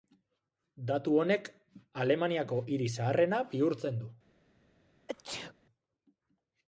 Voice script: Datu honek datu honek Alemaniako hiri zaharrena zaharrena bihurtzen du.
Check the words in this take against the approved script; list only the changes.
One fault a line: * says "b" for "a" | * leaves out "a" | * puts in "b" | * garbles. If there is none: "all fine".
* leaves out "datu honek"
* leaves out "zaharrena"